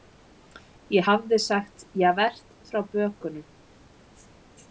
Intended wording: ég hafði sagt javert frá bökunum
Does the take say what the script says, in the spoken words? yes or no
yes